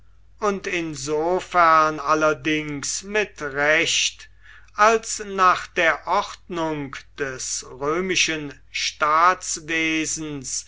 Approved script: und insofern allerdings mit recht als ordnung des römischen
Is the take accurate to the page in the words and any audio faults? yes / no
no